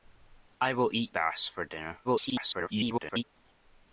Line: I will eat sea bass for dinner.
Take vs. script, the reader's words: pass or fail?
fail